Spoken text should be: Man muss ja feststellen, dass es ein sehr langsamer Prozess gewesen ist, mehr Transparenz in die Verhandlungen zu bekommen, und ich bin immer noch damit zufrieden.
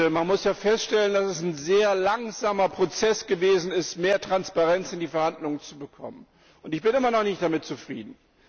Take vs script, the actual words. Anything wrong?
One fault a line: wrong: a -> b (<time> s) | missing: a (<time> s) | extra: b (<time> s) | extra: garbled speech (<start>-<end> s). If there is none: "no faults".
extra: nicht (7.2 s)